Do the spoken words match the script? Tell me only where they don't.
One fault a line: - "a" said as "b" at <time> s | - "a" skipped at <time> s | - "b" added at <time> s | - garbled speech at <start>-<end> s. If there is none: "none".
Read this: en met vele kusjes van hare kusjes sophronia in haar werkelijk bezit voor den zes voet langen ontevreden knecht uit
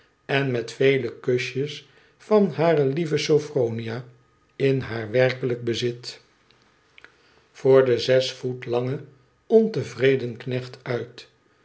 - "kusjes" said as "lieve" at 2.8 s